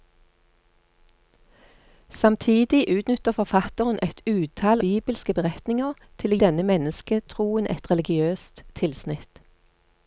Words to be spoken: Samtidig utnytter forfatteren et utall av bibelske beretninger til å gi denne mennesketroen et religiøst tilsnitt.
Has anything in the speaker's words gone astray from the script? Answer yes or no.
yes